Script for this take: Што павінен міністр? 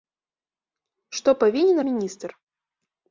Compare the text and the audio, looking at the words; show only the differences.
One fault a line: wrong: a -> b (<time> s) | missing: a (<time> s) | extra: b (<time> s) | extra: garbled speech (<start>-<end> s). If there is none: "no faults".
no faults